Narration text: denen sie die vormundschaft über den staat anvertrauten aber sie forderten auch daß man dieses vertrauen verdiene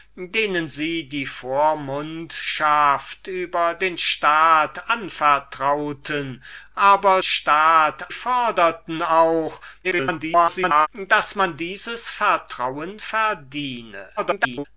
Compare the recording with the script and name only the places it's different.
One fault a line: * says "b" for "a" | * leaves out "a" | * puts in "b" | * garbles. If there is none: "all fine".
* says "staat" for "sie"
* garbles
* garbles